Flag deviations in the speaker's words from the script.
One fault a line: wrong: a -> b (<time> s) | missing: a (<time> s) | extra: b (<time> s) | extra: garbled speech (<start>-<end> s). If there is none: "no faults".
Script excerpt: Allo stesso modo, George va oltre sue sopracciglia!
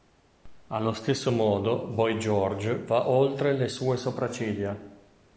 extra: Boy (1.9 s)
extra: le (3.5 s)